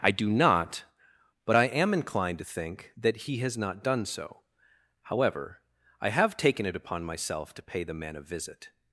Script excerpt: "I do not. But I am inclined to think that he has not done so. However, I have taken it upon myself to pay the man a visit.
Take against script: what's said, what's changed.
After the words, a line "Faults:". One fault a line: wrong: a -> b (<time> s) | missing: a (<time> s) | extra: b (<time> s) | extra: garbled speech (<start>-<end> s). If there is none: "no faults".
"I do not. But I am inclined to think that he has not done so. However, I have taken it upon myself to pay the man a visit.
Faults:
no faults